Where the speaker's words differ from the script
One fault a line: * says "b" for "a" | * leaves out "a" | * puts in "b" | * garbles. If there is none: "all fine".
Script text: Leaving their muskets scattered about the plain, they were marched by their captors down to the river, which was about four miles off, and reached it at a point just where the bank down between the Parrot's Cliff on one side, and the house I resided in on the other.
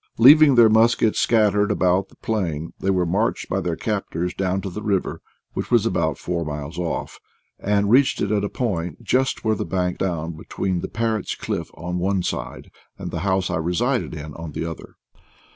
all fine